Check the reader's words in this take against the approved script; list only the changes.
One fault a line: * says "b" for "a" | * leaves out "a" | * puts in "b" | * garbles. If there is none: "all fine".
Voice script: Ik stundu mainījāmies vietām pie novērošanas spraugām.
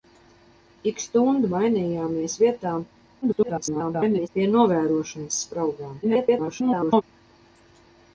* garbles
* garbles